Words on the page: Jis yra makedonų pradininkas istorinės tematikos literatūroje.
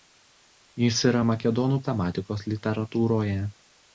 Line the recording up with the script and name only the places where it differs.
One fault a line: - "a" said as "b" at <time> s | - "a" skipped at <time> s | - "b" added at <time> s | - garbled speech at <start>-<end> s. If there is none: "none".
- "pradininkas istorinės" skipped at 1.8 s